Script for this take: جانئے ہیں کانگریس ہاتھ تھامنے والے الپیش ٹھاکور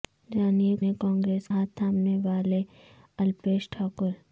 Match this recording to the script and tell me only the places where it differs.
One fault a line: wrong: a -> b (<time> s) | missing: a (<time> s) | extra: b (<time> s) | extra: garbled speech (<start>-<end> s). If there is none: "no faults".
no faults